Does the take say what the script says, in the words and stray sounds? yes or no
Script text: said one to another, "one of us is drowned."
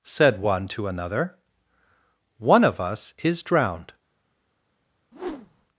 no